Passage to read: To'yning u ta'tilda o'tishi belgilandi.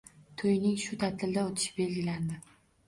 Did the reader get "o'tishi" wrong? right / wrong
right